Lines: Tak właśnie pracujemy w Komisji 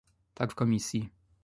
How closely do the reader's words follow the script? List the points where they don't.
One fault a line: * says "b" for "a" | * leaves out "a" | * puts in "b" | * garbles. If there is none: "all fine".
* leaves out "właśnie pracujemy"